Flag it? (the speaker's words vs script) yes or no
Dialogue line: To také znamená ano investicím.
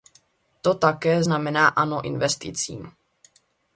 no